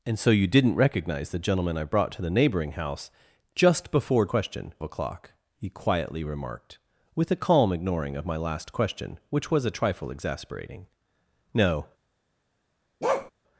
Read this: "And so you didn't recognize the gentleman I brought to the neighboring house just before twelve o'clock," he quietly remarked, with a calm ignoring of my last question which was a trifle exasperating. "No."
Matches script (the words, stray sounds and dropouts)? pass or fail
fail